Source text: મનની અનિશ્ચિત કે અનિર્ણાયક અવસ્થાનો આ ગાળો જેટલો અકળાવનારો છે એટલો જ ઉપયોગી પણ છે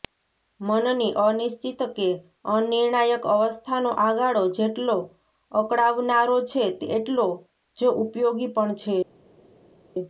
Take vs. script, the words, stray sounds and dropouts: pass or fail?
pass